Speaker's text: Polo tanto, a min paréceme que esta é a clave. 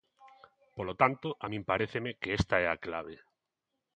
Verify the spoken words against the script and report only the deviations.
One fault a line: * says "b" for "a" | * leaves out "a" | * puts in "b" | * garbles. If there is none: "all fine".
all fine